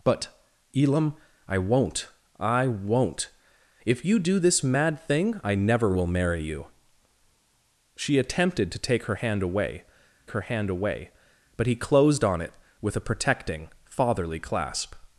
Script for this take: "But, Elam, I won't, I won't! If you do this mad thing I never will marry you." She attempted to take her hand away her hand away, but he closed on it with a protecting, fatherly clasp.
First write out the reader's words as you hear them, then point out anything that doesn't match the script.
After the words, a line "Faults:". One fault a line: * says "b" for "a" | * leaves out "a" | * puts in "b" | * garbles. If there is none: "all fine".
"But, Elam, I won't, I won't! If you do this mad thing I never will marry you." She attempted to take her hand away her hand away, but he closed on it with a protecting, fatherly clasp.
Faults:
all fine